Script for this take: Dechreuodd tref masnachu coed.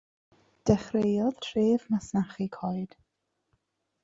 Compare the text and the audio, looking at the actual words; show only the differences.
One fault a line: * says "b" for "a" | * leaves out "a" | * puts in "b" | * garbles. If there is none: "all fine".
all fine